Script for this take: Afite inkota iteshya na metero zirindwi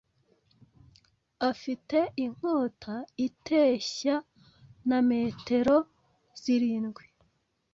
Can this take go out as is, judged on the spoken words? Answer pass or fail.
pass